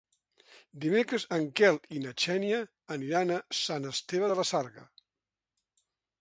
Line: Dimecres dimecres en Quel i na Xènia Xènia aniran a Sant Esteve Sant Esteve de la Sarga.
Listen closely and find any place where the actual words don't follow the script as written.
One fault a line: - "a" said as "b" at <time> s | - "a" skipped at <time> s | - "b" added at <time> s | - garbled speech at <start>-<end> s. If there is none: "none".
- "dimecres" skipped at 1.2 s
- "Xènia" skipped at 2.6 s
- "Sant Esteve" skipped at 4.3 s